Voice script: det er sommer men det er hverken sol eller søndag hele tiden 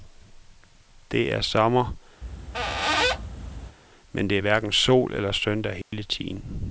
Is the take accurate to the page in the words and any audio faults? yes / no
no